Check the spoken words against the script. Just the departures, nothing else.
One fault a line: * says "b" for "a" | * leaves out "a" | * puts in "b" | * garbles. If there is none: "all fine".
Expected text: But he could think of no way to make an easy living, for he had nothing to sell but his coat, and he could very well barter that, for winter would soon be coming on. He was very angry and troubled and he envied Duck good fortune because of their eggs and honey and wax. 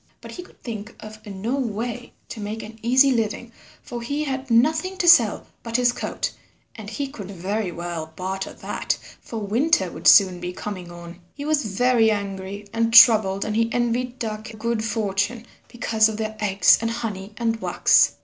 all fine